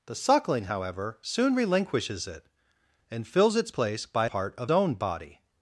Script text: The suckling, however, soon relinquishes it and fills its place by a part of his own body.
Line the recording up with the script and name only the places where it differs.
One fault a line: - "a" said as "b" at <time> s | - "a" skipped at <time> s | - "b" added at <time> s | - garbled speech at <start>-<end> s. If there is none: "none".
- "a" skipped at 4.3 s
- "his" skipped at 4.7 s